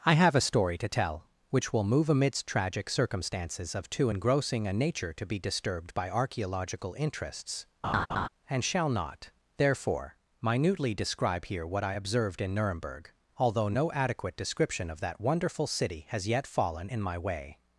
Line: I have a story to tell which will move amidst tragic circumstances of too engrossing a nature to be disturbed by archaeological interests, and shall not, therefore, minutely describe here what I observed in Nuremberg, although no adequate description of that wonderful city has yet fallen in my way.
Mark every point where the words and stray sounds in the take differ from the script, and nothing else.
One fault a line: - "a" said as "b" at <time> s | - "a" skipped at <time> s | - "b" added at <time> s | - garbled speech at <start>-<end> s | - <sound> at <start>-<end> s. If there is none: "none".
- laugh at 7.8-8.3 s